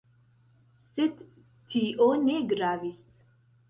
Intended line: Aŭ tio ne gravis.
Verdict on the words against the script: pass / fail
fail